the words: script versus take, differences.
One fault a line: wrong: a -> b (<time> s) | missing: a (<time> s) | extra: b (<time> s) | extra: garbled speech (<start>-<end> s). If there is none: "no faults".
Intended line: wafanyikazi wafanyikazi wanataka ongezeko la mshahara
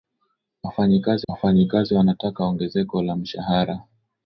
no faults